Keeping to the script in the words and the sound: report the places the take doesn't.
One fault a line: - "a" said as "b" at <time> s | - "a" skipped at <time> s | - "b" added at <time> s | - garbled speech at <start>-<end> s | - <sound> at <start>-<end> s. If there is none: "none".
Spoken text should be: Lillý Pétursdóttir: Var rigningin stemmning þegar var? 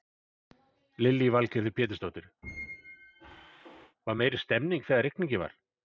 - "Valgerður" added at 1.4 s
- squeak at 2.4-4.0 s
- "rigningin" said as "meiri" at 4.2 s
- "rigningin" added at 5.1 s